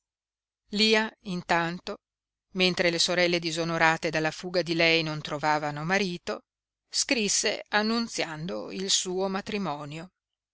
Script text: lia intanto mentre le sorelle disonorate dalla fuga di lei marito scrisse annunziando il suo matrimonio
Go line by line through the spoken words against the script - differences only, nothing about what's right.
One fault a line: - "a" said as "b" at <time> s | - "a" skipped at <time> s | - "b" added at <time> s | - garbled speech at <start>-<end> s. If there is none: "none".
- "non trovavano" added at 5.0 s